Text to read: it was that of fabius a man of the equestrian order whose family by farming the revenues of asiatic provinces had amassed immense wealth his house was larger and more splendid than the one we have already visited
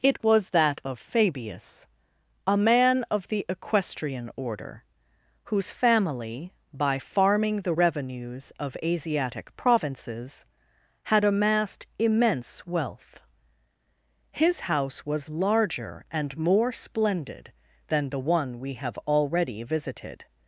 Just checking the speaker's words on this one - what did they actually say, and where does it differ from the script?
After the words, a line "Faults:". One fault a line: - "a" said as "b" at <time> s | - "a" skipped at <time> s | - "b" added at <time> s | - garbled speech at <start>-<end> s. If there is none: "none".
it was that of fabius a man of the equestrian order whose family by farming the revenues of asiatic provinces had amassed immense wealth his house was larger and more splendid than the one we have already visited
Faults:
none